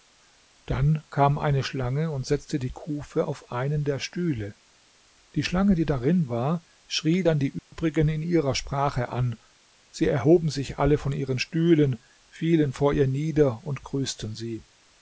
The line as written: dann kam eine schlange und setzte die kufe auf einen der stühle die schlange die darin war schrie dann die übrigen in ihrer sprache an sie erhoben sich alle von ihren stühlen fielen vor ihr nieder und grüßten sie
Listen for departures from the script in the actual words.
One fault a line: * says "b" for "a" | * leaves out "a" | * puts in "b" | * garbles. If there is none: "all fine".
all fine